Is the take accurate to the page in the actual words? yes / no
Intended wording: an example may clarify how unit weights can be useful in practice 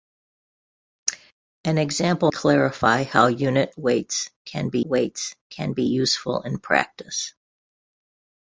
no